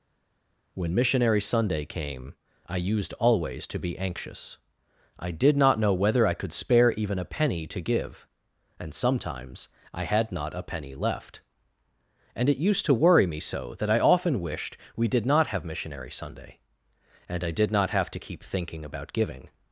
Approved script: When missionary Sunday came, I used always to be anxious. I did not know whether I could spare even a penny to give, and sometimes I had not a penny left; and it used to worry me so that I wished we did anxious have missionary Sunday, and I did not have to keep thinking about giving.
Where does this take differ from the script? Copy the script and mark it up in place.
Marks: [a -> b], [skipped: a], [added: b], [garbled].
When missionary Sunday came, I used always to be anxious. I did not know whether I could spare even a penny to give, and sometimes I had not a penny left; and it used to worry me so that I [added: often] wished we did [anxious -> not] have missionary Sunday, and I did not have to keep thinking about giving.